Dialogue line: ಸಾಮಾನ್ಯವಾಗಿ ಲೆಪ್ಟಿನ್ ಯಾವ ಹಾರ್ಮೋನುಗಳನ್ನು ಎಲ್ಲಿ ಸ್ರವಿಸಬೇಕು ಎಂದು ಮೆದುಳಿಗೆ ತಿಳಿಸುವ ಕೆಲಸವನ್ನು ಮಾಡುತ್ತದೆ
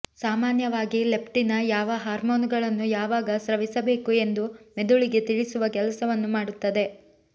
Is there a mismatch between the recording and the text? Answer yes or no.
yes